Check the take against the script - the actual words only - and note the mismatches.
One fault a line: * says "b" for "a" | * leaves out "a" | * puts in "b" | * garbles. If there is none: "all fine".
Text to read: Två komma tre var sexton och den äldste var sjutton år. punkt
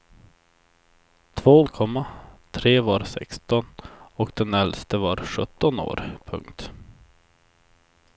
all fine